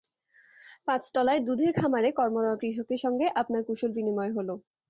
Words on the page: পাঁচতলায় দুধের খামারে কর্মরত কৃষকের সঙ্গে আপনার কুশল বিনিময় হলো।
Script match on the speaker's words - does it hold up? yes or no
yes